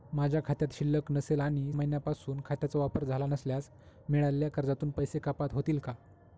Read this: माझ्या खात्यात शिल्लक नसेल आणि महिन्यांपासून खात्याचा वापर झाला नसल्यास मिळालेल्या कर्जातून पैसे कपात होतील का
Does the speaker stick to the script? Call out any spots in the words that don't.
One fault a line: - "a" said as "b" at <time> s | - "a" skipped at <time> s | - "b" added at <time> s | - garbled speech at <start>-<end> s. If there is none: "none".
none